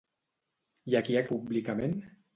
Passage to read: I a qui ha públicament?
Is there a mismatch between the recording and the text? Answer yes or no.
no